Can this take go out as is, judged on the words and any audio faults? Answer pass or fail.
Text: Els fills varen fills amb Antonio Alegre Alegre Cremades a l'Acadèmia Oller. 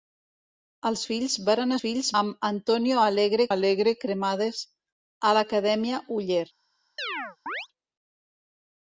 fail